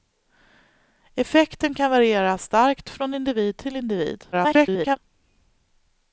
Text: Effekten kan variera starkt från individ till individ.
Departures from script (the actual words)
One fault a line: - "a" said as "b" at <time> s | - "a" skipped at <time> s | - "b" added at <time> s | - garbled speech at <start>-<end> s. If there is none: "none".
- garbled speech at 4.3-5.0 s